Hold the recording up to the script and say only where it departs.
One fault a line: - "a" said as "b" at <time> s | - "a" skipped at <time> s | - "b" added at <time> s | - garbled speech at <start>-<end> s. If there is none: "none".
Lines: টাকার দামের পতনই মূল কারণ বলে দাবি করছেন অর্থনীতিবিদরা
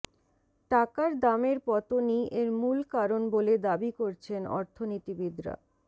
- "এর" added at 2.3 s